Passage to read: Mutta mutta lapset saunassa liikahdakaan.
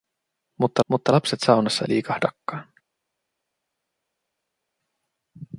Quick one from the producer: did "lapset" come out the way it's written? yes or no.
yes